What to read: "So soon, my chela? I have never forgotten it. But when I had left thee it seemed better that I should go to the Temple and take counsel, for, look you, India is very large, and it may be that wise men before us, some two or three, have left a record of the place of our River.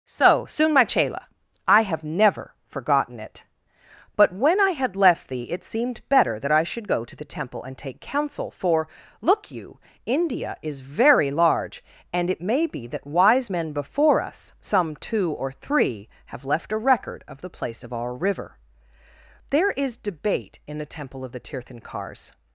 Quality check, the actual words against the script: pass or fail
fail